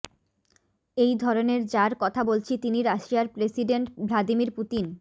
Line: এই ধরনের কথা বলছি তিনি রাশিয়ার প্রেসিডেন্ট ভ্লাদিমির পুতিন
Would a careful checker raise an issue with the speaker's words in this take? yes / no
yes